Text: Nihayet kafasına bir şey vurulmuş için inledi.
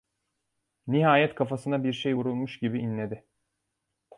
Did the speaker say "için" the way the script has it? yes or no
no